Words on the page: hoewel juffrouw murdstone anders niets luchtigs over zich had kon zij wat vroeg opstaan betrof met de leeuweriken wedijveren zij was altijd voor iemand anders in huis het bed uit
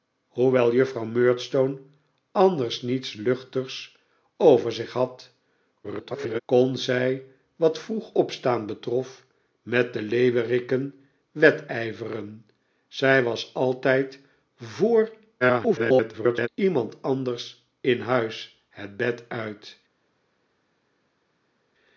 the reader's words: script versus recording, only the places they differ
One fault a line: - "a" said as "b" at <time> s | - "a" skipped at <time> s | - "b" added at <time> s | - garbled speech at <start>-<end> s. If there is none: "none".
- garbled speech at 5.8-6.4 s
- garbled speech at 15.4-16.5 s